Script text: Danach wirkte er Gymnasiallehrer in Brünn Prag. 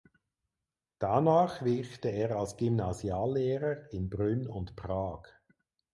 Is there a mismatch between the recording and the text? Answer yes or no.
yes